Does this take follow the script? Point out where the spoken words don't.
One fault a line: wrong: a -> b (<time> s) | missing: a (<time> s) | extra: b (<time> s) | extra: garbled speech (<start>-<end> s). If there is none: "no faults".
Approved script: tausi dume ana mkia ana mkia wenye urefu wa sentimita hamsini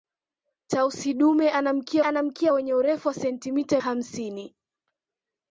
no faults